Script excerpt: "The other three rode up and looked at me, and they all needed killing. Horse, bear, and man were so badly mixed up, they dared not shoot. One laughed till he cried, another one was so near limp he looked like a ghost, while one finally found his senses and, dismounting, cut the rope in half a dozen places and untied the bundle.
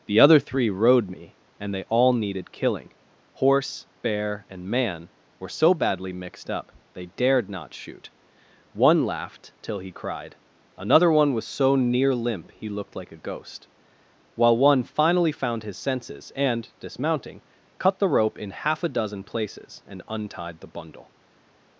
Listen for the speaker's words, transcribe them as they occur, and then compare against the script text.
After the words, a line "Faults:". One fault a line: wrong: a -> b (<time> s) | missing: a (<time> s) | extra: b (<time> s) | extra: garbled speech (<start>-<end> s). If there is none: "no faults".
"The other three rode me, and they all needed killing. Horse, bear, and man were so badly mixed up, they dared not shoot. One laughed till he cried, another one was so near limp he looked like a ghost, while one finally found his senses and, dismounting, cut the rope in half a dozen places and untied the bundle.
Faults:
missing: up and looked at (1.1 s)